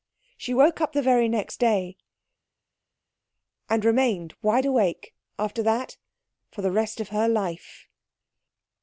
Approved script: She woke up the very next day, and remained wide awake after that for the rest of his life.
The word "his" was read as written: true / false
false